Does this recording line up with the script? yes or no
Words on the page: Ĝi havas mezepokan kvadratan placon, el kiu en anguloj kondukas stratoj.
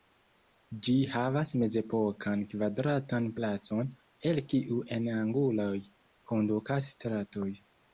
yes